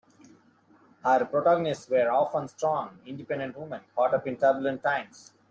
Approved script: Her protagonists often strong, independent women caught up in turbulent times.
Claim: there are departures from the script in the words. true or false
true